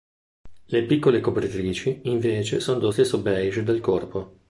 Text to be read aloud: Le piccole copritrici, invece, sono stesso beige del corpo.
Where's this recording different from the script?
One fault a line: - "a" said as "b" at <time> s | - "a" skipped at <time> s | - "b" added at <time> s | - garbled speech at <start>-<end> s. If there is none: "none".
- "dello" added at 2.8 s